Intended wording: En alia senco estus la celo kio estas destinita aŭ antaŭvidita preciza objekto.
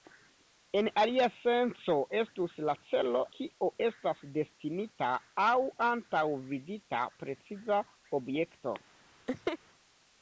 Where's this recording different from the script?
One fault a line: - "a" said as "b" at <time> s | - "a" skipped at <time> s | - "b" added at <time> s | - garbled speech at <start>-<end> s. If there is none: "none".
none